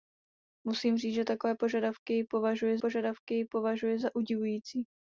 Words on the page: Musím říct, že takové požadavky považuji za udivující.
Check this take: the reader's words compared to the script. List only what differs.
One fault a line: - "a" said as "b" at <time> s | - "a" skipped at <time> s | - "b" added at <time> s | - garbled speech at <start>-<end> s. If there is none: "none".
- "požadavky považuji" added at 2.8 s